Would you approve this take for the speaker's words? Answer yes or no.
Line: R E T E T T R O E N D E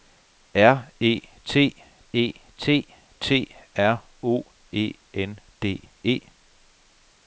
yes